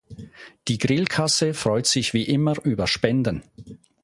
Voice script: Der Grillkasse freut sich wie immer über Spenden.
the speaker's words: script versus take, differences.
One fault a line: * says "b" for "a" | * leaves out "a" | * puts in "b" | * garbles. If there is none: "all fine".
* says "Die" for "Der"